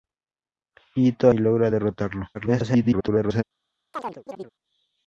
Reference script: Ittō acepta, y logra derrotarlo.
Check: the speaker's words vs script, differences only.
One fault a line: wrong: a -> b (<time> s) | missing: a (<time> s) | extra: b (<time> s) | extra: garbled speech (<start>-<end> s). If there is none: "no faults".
missing: acepta (1.3 s)
extra: garbled speech (2.3-3.4 s)